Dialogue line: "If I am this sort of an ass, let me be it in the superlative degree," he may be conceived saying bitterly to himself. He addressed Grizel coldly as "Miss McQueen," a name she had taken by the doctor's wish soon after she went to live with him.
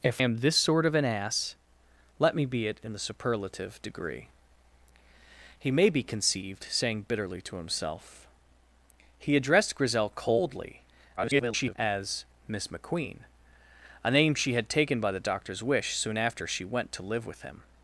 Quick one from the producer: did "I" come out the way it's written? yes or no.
no